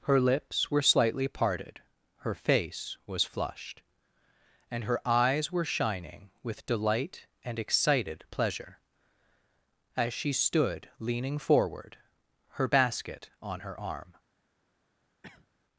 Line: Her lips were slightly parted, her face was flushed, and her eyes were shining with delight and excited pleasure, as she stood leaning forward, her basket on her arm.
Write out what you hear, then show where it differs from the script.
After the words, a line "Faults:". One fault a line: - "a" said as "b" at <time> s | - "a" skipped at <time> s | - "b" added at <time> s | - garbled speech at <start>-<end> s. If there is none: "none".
Her lips were slightly parted, her face was flushed, and her eyes were shining with delight and excited pleasure, as she stood leaning forward, her basket on her arm.
Faults:
none